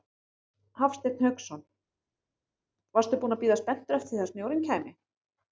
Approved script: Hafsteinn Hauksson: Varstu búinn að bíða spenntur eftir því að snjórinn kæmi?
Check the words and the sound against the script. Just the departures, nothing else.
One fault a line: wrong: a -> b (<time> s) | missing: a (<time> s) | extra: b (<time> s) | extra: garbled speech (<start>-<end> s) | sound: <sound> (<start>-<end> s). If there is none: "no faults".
no faults